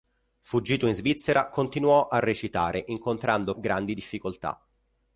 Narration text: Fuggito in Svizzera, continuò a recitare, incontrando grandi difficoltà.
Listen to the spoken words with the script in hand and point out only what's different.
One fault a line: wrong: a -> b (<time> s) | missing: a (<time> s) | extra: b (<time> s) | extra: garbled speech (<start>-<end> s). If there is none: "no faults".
no faults